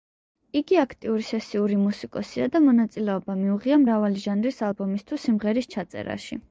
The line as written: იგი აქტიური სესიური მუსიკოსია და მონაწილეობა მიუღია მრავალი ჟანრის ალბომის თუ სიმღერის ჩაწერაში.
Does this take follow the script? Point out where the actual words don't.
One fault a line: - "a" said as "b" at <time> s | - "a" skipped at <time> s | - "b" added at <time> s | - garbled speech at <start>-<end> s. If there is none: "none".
none